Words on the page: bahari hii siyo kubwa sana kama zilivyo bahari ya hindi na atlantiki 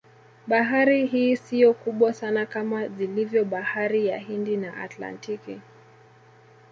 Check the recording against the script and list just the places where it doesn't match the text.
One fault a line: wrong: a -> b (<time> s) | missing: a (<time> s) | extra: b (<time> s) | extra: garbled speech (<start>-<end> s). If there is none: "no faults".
no faults